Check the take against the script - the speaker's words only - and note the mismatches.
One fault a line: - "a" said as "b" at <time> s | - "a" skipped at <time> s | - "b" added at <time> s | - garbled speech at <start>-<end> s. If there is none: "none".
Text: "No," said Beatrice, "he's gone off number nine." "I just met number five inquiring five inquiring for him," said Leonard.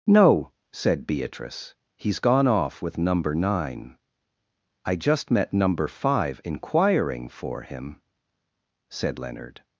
- "with" added at 2.8 s
- "five inquiring" skipped at 7.3 s